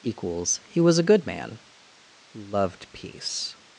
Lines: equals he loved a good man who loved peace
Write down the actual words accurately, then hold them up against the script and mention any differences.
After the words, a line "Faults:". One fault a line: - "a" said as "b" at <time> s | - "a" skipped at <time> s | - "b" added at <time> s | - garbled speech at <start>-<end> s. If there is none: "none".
equals he was a good man who loved peace
Faults:
- "loved" said as "was" at 0.8 s